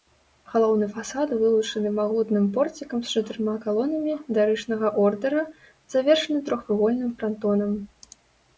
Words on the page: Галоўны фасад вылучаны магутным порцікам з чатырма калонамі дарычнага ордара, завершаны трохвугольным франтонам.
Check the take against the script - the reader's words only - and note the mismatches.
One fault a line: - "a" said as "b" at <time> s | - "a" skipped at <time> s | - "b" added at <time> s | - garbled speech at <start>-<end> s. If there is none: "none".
none